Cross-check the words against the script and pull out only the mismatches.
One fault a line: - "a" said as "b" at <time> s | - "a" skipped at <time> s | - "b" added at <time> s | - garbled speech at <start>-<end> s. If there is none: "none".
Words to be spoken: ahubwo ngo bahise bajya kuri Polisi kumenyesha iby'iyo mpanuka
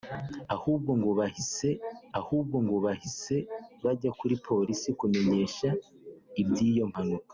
- "ahubwo ngo bahise" added at 2.2 s